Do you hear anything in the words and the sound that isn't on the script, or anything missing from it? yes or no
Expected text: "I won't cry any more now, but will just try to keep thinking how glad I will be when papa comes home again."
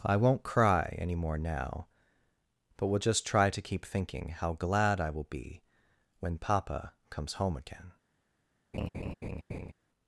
yes